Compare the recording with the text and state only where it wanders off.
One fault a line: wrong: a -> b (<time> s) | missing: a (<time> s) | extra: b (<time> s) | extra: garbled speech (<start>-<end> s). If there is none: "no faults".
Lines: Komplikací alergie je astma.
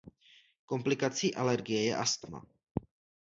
no faults